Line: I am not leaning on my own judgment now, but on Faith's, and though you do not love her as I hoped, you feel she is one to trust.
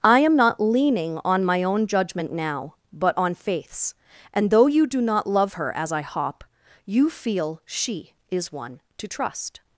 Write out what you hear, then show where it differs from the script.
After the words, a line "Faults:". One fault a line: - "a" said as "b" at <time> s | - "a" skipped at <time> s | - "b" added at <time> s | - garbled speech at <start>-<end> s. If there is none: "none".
I am not leaning on my own judgment now, but on Faith's, and though you do not love her as I hop, you feel she is one to trust.
Faults:
- "hoped" said as "hop" at 6.0 s